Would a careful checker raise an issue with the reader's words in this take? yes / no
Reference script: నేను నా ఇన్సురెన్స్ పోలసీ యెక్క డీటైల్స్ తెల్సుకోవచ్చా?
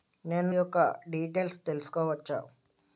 yes